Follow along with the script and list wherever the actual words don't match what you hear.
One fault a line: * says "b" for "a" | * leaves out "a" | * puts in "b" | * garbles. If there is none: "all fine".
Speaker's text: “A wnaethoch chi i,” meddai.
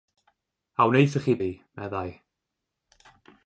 all fine